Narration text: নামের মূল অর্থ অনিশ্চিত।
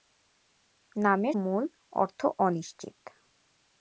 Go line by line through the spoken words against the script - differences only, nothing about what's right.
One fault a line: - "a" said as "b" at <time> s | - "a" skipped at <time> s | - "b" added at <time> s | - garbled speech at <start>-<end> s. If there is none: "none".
none